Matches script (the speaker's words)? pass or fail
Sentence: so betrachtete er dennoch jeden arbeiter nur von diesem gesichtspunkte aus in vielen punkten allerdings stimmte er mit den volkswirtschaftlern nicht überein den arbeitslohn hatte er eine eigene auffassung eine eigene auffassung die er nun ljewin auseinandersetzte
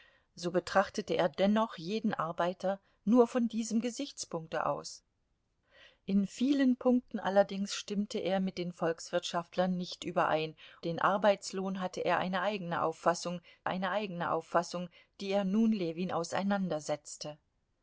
pass